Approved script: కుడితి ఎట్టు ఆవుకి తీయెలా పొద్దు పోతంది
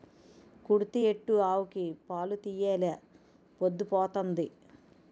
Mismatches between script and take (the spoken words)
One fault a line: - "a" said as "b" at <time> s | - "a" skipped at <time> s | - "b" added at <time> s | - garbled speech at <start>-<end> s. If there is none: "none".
- "పాలు" added at 2.0 s